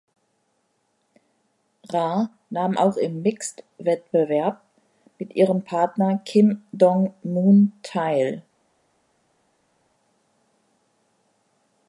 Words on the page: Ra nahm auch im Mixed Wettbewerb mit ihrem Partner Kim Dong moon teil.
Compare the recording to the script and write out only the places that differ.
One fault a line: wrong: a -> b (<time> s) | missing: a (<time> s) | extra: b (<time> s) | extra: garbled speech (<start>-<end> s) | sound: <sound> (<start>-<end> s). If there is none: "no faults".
no faults